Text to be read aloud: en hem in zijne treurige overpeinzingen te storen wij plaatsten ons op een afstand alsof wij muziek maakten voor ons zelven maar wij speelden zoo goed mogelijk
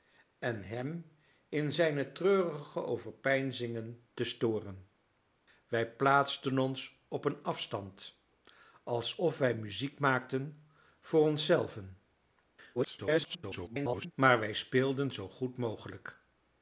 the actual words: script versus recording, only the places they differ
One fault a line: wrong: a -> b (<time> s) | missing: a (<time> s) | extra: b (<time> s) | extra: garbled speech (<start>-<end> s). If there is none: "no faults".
extra: garbled speech (12.7-14.1 s)